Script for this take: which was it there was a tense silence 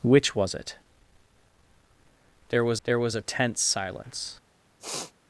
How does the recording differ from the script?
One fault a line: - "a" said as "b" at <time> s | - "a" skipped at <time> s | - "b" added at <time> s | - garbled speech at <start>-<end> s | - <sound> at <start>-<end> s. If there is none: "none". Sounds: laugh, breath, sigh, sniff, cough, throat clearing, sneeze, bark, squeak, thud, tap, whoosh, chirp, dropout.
- "there was" added at 2.8 s
- sniff at 4.8-5.1 s